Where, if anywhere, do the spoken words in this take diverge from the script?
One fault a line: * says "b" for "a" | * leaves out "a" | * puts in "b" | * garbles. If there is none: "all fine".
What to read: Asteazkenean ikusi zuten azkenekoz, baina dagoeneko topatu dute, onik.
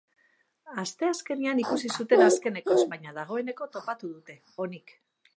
all fine